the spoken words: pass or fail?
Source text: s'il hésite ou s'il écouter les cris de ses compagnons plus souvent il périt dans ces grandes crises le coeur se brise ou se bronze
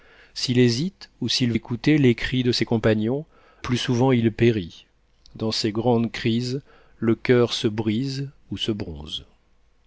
pass